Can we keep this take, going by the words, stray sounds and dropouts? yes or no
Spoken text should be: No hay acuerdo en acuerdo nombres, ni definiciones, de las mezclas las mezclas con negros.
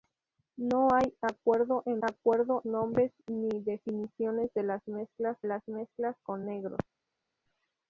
yes